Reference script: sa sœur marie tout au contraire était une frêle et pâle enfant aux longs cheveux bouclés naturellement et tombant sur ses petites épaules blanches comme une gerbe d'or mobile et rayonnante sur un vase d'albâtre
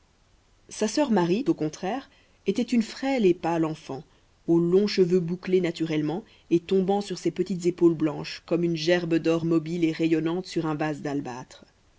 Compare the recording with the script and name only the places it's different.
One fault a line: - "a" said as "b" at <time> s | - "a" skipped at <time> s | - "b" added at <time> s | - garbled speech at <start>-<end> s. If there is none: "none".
- "tout" skipped at 1.4 s